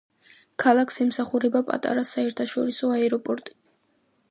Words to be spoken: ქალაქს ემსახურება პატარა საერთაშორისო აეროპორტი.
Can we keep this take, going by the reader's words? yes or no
yes